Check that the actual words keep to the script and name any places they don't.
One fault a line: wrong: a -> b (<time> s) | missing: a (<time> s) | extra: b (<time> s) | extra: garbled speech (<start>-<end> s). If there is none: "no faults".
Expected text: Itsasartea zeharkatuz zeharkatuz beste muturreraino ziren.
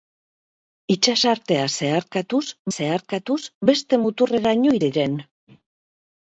no faults